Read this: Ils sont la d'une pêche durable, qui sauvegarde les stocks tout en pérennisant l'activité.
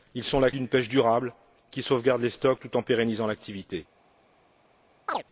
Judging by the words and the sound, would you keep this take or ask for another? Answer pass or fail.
fail